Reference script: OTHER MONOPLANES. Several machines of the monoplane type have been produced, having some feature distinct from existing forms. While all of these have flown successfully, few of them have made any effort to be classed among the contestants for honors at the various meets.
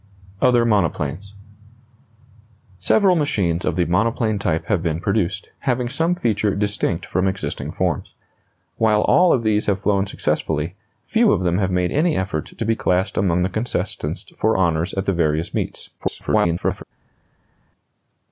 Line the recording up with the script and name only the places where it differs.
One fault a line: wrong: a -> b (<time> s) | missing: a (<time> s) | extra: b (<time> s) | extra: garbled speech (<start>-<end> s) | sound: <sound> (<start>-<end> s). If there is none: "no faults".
extra: garbled speech (16.0-16.8 s)